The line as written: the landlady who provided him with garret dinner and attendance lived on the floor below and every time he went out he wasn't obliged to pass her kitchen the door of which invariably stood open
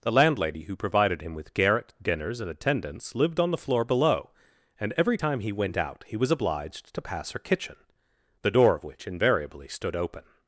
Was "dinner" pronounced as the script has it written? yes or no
no